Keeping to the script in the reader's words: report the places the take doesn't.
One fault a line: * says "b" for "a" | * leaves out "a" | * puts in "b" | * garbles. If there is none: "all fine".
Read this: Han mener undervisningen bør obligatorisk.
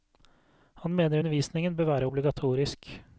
* puts in "være"